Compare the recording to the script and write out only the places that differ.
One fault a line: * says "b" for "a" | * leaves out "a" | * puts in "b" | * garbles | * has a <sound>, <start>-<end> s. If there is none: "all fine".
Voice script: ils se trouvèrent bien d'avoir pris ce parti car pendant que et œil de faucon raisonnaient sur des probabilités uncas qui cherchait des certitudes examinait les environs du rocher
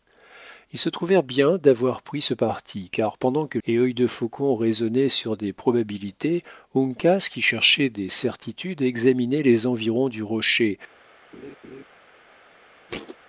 * has a laugh, 11.3-11.8 s
* has a thud, 12.9-13.2 s